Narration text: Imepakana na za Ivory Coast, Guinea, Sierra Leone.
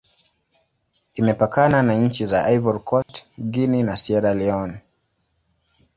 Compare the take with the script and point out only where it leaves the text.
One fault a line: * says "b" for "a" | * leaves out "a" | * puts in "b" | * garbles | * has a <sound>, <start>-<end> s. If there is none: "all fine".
* puts in "nchi"
* has a dropout, 3.0-3.1 s
* puts in "na"